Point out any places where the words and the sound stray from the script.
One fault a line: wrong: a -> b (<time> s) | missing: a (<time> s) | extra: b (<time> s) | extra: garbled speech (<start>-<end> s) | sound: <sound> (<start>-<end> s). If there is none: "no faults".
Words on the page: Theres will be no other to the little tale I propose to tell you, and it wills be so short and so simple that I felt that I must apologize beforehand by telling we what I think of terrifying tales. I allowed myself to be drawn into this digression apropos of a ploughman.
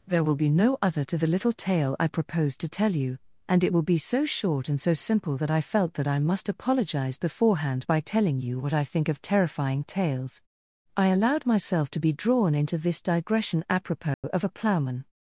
wrong: Theres -> There (0.1 s)
wrong: wills -> will (3.7 s)
wrong: we -> you (8.4 s)
sound: dropout (14.1-14.2 s)